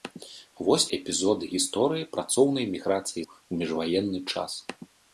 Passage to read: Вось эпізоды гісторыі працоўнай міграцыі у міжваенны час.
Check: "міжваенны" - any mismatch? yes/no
no